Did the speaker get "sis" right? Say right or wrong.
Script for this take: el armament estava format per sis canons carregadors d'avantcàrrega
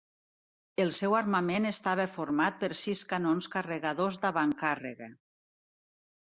right